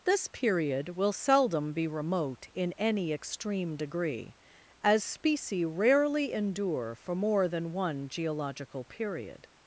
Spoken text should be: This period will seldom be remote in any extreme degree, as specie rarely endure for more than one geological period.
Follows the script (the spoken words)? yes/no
yes